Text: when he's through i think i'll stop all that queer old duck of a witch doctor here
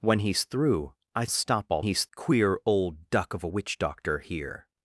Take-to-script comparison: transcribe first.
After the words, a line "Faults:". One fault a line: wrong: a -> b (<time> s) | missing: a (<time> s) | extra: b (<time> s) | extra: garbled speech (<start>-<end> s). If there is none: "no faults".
when he's through i stop all he's queer old duck of a witch doctor here
Faults:
missing: think i'll (1.2 s)
wrong: that -> he's (1.8 s)